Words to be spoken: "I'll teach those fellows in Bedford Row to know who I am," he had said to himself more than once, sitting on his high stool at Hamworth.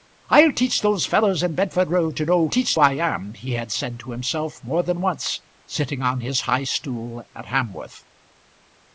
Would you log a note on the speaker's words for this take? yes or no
yes